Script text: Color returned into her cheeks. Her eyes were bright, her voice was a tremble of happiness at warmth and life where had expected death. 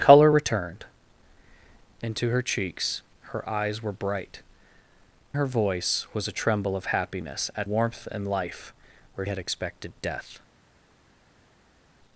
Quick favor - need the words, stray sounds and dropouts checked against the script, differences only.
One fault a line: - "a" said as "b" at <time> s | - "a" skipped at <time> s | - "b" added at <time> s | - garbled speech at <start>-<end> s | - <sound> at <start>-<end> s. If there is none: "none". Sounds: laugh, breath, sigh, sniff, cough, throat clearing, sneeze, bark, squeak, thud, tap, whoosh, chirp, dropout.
none